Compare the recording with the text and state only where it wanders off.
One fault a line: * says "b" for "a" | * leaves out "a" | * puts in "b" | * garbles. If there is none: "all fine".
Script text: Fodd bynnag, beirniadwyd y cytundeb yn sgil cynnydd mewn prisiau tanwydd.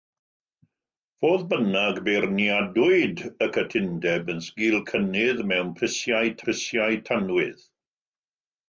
* puts in "prisiau"